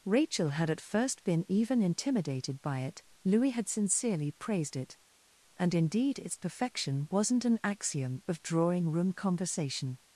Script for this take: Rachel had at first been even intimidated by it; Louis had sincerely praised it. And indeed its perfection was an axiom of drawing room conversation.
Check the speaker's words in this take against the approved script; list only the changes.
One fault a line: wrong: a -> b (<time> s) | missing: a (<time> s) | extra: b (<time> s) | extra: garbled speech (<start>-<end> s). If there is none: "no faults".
wrong: was -> wasn't (7.1 s)